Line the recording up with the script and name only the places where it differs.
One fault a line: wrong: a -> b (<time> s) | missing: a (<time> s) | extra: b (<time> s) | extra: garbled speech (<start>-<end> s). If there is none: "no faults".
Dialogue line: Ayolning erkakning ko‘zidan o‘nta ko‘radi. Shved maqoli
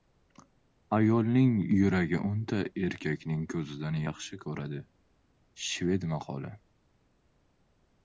extra: yuragi o‘nta (1.8 s)
wrong: o‘nta -> yaxshi (4.0 s)